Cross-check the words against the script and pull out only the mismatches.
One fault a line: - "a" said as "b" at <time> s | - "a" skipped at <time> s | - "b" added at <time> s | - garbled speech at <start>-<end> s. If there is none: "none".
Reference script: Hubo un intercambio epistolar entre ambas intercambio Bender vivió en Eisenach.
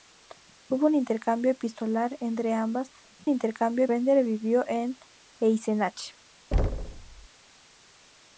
none